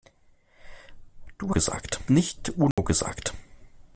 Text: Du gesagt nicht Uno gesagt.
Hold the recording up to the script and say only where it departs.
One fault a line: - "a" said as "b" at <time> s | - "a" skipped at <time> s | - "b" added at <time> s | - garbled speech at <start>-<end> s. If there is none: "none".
none